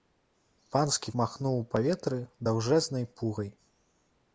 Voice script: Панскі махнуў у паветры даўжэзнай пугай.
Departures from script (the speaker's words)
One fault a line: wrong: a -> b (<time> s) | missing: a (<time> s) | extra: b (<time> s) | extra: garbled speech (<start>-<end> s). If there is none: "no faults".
no faults